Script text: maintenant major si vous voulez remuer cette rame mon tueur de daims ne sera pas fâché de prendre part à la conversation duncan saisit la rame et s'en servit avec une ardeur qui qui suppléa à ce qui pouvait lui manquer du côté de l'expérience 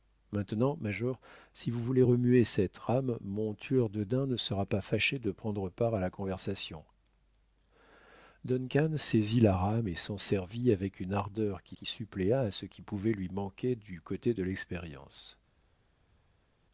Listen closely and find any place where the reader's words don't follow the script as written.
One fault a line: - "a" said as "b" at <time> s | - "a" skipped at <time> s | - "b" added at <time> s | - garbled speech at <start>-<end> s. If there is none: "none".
none